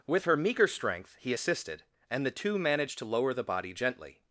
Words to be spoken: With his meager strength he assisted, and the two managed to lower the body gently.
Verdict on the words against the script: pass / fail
fail